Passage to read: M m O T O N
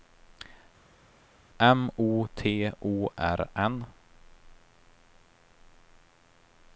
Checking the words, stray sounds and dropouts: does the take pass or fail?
fail